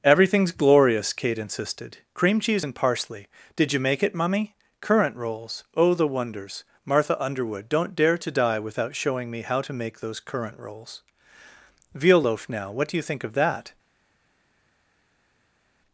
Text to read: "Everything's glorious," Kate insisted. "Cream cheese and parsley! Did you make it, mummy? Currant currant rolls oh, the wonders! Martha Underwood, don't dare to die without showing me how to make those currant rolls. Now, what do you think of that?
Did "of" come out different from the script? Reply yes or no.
no